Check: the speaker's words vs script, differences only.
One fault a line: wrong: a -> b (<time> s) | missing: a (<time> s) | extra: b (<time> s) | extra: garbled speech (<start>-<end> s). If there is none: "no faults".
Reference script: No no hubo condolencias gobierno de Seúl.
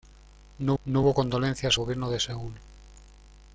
no faults